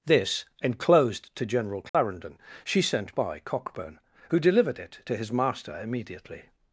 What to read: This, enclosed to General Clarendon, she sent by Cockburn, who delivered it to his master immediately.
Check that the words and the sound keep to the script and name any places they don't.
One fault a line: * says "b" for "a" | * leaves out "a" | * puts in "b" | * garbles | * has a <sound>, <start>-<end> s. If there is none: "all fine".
* has a dropout, 1.9-1.9 s